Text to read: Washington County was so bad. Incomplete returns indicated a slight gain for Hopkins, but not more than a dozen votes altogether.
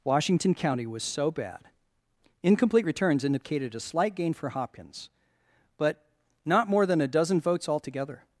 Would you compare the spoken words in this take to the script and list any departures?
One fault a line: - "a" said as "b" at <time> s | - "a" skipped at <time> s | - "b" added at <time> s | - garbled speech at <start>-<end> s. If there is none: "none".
none